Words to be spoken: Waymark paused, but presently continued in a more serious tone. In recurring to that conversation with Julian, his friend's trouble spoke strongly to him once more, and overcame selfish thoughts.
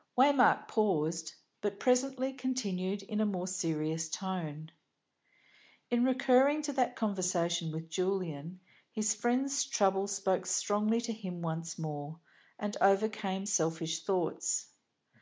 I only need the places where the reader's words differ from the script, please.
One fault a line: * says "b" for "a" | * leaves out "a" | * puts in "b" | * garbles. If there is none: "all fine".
all fine